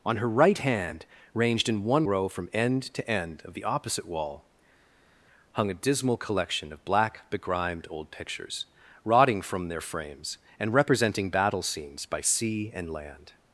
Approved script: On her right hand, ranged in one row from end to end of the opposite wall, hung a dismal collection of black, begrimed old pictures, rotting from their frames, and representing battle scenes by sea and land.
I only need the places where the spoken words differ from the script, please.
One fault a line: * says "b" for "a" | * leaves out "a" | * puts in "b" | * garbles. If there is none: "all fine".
all fine